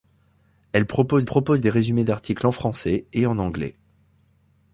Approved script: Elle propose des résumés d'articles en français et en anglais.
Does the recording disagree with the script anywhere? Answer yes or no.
yes